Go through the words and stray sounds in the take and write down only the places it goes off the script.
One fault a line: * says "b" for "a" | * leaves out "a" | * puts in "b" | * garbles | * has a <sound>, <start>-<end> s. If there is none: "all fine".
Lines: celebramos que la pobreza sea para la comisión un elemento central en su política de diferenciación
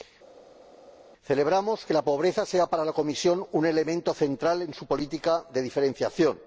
all fine